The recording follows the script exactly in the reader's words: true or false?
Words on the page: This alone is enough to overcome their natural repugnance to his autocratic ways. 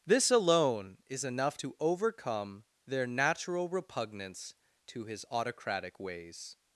true